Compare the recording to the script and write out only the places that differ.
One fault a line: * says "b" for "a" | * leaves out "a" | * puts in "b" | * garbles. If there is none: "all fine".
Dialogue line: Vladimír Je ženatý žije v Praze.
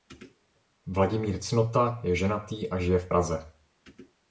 * puts in "Cnota"
* puts in "a"